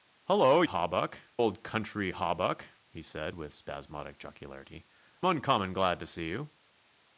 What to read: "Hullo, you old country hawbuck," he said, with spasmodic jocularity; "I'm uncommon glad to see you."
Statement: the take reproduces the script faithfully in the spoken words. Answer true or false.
false